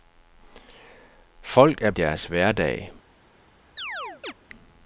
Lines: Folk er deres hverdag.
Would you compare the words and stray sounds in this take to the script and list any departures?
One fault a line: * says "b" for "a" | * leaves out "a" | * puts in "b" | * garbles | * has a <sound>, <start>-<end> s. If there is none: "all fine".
* has a chirp, 3.8-4.3 s